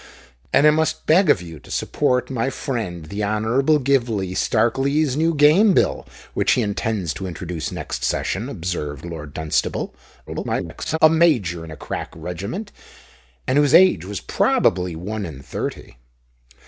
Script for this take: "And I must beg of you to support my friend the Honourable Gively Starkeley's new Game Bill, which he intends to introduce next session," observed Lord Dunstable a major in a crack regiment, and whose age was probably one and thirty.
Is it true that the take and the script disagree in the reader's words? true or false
true